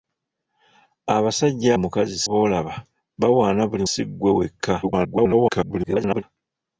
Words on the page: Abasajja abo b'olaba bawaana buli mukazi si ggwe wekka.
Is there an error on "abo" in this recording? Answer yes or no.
yes